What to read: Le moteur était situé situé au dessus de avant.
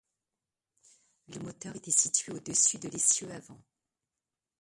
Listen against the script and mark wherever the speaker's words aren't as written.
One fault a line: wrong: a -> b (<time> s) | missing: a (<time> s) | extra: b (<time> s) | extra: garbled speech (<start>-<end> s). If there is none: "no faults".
missing: situé (2.3 s)
extra: l'essieu (2.9 s)